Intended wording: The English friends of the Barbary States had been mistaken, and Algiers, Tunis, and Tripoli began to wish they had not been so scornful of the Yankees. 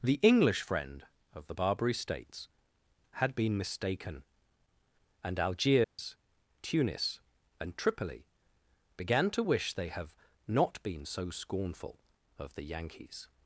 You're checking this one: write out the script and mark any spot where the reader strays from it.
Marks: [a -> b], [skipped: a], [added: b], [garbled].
The English [friends -> friend] of the Barbary States had been mistaken, and Algiers, Tunis, and Tripoli began to wish they [had -> have] not been so scornful of the Yankees.